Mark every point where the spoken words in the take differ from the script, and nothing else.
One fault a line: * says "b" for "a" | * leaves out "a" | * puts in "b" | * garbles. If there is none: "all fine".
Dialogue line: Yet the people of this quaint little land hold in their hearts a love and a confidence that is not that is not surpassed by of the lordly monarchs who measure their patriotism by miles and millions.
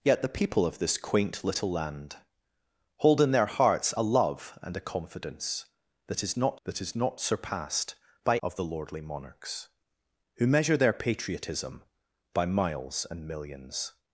all fine